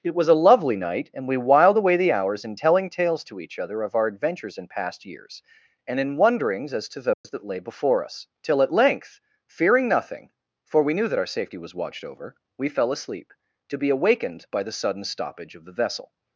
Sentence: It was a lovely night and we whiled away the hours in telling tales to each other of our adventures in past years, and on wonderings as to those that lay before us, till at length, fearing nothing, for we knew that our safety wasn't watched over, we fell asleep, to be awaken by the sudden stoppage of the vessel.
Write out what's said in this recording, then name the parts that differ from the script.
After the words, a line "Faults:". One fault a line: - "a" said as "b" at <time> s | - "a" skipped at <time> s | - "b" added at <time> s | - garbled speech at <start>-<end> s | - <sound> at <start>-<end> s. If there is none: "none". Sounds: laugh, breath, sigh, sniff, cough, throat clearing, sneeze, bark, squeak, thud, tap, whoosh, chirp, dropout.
It was a lovely night and we whiled away the hours in telling tales to each other of our adventures in past years, and in wonderings as to those that lay before us, till at length, fearing nothing, for we knew that our safety was watched over, we fell asleep, to be awakened by the sudden stoppage of the vessel.
Faults:
- "on" said as "in" at 6.0 s
- dropout at 7.1-7.2 s
- "wasn't" said as "was" at 11.6 s
- "awaken" said as "awakened" at 13.9 s